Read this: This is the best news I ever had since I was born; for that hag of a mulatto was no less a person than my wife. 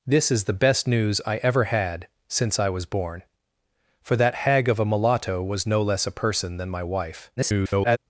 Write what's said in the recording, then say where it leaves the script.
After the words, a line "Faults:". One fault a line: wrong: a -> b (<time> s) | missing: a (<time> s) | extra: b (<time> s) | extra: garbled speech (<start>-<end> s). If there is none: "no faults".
This is the best news I ever had since I was born; for that hag of a mulatto was no less a person than my wife. [garbled]
Faults:
extra: garbled speech (7.4-8.0 s)